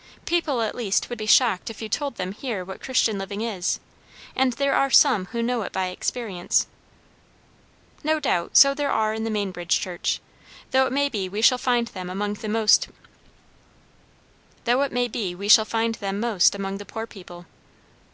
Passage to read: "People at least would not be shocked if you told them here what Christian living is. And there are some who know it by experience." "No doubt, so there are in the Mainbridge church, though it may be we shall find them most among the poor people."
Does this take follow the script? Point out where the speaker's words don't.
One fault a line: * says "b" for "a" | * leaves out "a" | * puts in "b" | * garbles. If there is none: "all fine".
* leaves out "not"